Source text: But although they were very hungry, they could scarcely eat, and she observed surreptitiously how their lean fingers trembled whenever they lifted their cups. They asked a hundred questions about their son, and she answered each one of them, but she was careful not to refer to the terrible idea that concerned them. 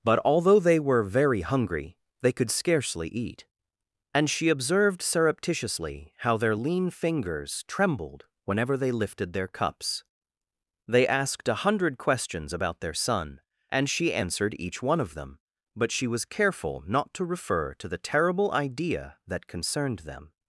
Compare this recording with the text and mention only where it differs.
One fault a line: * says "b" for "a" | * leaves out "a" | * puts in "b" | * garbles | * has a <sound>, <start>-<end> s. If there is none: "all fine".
all fine